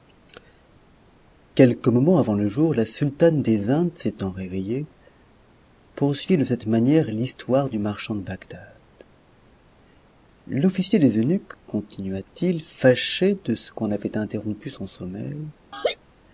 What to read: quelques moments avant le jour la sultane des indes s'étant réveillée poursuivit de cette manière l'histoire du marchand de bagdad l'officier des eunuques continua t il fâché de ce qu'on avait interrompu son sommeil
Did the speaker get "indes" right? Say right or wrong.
right